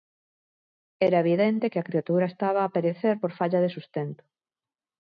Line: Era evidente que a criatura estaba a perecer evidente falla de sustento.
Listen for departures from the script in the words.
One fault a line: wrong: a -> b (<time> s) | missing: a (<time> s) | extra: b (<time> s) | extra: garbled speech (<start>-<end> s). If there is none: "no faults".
wrong: evidente -> por (3.2 s)